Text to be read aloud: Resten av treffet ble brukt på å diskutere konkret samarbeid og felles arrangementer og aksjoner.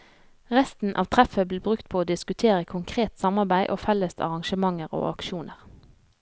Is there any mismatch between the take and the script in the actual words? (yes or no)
no